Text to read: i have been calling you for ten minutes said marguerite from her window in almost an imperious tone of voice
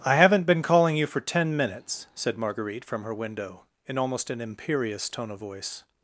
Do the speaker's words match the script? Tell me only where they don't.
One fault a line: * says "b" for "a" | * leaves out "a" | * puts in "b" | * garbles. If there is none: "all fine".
* says "haven't" for "have"